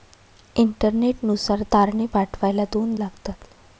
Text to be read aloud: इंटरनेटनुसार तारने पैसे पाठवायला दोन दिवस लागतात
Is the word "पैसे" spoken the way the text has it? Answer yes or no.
no